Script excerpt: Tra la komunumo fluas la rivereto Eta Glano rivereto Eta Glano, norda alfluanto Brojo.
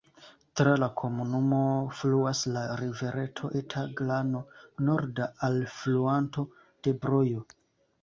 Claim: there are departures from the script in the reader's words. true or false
true